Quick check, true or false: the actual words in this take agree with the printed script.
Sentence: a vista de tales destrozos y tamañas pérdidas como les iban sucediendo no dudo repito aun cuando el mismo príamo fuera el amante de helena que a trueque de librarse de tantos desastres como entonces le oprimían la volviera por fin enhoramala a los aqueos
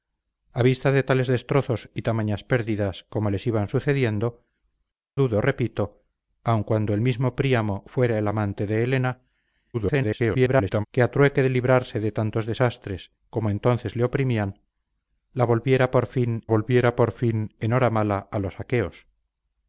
false